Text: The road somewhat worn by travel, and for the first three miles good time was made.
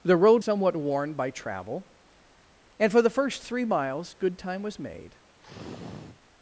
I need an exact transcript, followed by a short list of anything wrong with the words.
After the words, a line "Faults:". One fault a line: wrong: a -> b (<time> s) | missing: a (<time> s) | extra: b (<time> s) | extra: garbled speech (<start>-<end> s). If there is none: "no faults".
The road somewhat worn by travel, and for the first three miles good time was made.
Faults:
no faults